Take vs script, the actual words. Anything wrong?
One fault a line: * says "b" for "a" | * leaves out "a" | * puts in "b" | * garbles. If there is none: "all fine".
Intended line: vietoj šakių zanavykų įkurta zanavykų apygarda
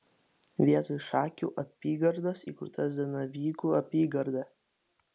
* says "apygardos" for "zanavykų"